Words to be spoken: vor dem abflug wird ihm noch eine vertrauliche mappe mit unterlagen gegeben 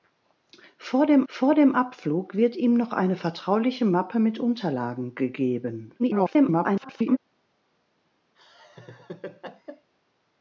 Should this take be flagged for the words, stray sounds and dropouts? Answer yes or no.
yes